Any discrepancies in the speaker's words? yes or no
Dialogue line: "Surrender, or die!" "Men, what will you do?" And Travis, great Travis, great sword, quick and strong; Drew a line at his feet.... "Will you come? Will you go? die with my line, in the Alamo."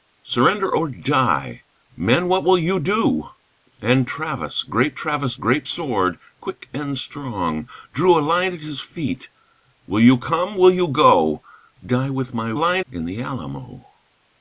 no